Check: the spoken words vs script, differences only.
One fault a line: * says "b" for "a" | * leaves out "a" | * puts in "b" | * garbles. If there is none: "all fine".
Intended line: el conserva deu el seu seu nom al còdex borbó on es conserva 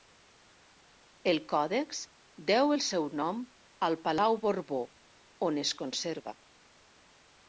* says "còdex" for "conserva"
* leaves out "seu"
* says "palau" for "còdex"